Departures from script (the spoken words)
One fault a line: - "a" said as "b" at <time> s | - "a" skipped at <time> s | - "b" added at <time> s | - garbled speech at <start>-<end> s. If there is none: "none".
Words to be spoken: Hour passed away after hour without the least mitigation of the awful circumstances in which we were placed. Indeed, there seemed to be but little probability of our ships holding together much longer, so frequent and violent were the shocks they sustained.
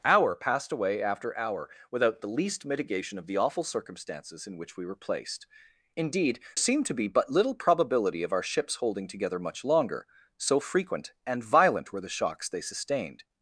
- "there" skipped at 6.4 s